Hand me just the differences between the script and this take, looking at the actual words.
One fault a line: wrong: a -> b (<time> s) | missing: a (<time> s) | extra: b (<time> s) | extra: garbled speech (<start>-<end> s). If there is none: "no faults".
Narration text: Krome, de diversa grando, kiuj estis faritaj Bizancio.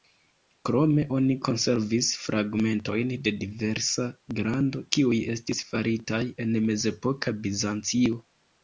extra: oni konservis fragmentojn (1.2 s)
extra: en mezepoka (6.5 s)